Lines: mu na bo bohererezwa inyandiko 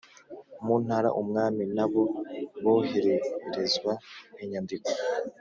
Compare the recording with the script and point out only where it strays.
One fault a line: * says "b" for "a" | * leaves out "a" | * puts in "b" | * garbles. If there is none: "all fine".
* puts in "ntara umwami"